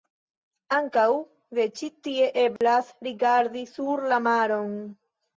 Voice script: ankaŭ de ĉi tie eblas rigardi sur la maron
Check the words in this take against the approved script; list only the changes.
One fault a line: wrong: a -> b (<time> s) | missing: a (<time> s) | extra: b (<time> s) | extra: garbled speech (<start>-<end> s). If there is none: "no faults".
no faults